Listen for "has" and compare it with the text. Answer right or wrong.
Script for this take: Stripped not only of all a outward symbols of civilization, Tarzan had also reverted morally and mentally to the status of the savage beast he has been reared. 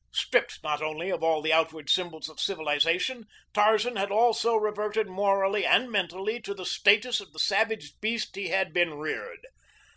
wrong